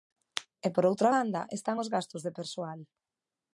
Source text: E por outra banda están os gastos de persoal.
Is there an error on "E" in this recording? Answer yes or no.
no